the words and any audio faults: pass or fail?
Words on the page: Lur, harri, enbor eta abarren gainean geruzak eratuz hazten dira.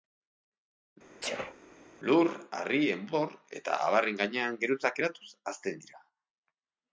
fail